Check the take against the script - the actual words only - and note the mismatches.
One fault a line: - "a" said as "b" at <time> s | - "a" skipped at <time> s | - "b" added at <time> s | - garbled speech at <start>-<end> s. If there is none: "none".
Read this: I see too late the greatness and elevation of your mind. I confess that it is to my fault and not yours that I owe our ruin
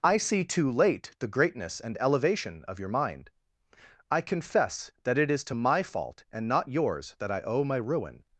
- "our" said as "my" at 7.6 s